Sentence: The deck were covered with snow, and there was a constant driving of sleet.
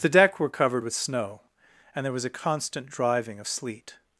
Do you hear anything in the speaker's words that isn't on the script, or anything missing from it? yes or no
no